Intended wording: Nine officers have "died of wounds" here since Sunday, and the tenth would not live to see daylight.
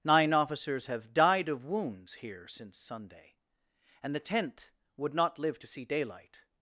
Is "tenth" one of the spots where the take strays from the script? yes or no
no